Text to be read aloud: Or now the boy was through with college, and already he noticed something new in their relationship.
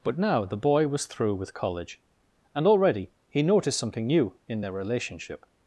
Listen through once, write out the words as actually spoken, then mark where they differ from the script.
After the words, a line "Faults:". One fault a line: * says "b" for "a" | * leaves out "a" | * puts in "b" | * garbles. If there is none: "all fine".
But now the boy was through with college, and already he noticed something new in their relationship.
Faults:
* says "But" for "Or"